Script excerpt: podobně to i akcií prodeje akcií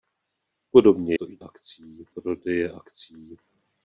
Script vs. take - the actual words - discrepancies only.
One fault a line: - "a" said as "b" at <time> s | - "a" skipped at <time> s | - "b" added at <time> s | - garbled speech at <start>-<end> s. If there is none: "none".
none